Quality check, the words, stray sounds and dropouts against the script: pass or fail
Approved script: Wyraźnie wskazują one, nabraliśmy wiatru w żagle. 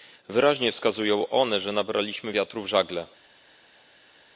fail